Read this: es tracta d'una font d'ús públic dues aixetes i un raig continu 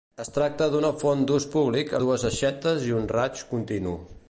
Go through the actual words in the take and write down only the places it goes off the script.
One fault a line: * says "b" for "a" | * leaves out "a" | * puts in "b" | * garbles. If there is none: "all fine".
all fine